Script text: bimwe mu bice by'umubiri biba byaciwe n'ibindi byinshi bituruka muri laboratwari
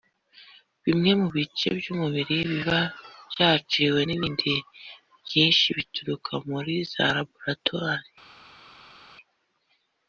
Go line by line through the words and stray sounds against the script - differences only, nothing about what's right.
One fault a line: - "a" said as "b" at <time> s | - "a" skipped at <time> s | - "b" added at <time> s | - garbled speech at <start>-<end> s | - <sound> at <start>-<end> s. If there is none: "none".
- "za" added at 6.9 s